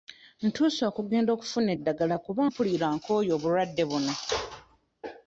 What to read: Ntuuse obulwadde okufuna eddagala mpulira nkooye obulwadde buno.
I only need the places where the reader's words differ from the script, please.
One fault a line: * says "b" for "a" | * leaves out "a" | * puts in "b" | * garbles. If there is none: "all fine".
* says "okugenda" for "obulwadde"
* puts in "kuba"